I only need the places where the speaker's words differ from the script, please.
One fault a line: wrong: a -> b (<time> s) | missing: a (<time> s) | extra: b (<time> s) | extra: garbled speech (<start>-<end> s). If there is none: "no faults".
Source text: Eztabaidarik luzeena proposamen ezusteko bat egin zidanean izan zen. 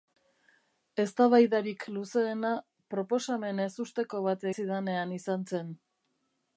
missing: egin (4.5 s)